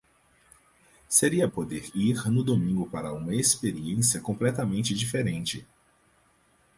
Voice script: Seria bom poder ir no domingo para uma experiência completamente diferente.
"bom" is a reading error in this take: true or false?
true